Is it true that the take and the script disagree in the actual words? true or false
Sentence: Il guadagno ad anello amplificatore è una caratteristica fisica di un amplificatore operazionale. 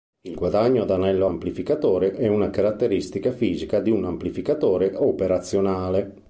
false